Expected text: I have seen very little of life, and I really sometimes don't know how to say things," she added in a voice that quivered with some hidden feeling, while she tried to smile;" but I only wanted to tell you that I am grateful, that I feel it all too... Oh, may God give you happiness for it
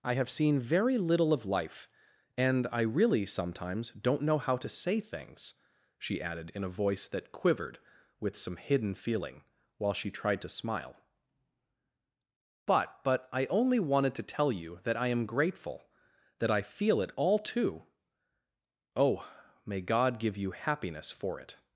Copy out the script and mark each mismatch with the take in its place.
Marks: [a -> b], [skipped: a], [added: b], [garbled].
I have seen very little of life, and I really sometimes don't know how to say things," she added in a voice that quivered with some hidden feeling, while she tried to smile;" but [added: but] I only wanted to tell you that I am grateful, that I feel it all too... Oh, may God give you happiness for it